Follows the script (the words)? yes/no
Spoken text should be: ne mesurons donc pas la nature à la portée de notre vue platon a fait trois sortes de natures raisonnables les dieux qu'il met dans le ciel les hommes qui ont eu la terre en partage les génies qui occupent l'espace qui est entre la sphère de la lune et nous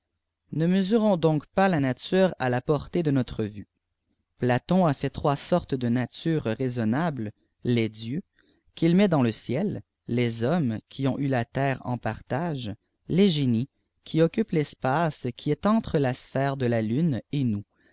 yes